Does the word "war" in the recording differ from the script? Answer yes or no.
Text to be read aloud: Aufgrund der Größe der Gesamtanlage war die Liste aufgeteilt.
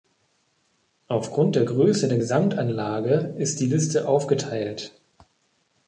yes